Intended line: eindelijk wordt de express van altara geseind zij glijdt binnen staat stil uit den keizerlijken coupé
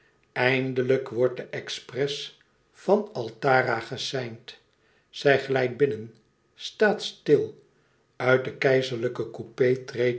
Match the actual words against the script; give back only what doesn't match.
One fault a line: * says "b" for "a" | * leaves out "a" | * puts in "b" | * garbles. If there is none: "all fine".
all fine